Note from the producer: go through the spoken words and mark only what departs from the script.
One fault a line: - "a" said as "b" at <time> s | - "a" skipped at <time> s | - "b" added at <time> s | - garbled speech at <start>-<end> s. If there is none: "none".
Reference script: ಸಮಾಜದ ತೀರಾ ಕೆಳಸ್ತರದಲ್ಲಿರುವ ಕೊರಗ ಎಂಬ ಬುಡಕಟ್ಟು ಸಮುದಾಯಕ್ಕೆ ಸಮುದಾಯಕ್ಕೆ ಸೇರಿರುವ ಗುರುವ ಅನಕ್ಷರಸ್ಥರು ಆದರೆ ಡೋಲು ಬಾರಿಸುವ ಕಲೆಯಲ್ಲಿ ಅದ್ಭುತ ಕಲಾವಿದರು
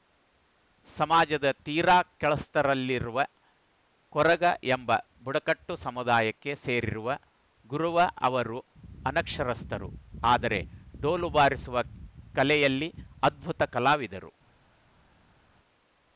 - "ಸಮುದಾಯಕ್ಕೆ" skipped at 6.5 s
- "ಅವರು" added at 8.3 s